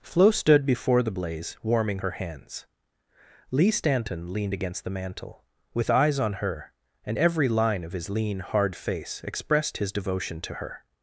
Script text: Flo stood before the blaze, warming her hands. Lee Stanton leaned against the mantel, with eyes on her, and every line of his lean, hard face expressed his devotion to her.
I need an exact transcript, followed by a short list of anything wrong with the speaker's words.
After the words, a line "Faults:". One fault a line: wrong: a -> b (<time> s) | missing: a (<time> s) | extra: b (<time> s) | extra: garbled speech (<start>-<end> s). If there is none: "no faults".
Flo stood before the blaze, warming her hands. Lee Stanton leaned against the mantel, with eyes on her, and every line of his lean, hard face expressed his devotion to her.
Faults:
no faults